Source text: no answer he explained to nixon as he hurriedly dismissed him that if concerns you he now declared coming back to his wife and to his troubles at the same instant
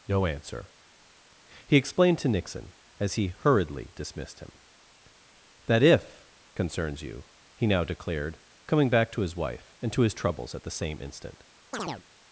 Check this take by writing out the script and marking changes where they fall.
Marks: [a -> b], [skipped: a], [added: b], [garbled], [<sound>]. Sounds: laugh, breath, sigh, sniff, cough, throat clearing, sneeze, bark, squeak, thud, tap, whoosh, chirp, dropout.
no answer he explained to nixon as he hurriedly dismissed him that if concerns you he now declared coming back to his wife and to his troubles at the same instant [chirp]